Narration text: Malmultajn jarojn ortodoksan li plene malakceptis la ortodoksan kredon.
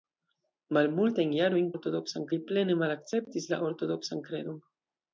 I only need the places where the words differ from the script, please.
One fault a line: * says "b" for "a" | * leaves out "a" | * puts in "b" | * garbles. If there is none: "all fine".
all fine